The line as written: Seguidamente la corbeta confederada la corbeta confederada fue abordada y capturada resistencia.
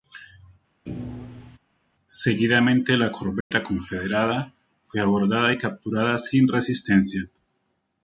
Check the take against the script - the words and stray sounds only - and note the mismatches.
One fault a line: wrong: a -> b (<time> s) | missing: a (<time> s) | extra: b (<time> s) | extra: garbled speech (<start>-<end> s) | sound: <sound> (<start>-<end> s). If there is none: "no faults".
sound: thud (0.9-1.6 s)
sound: dropout (3.4-3.5 s)
missing: la corbeta confederada (4.5 s)
extra: sin (6.2 s)